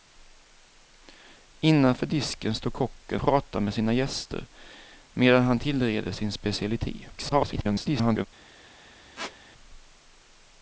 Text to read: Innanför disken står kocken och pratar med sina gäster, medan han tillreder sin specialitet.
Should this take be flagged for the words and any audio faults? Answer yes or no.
yes